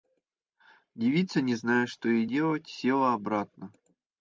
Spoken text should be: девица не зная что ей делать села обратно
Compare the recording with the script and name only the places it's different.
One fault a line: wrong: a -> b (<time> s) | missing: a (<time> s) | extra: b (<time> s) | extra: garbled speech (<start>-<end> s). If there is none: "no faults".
no faults